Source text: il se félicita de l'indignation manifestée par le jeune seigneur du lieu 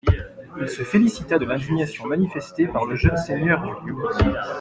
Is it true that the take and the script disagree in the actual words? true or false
false